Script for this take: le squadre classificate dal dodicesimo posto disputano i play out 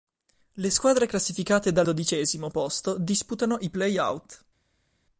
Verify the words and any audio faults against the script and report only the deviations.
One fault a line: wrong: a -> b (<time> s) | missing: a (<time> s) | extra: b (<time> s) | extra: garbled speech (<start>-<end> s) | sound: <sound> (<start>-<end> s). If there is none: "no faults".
no faults